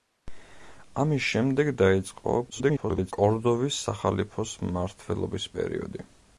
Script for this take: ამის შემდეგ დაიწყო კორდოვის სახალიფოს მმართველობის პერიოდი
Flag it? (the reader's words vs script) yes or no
yes